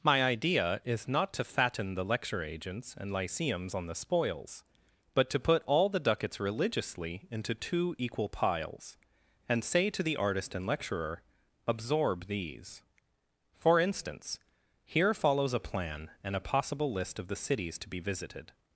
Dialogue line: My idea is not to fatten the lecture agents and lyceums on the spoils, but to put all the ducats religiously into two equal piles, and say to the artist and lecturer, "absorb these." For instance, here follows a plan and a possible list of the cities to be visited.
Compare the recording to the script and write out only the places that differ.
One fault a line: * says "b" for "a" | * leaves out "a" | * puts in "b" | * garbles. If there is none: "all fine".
all fine